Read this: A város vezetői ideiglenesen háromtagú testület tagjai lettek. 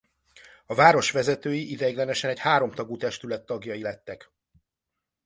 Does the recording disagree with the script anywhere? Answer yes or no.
yes